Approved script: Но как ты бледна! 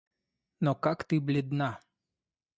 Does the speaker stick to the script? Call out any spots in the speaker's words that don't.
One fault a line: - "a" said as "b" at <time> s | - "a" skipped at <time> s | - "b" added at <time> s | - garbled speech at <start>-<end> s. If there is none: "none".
none